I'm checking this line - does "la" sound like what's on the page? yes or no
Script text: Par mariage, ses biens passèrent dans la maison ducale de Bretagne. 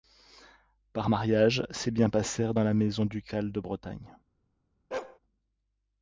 yes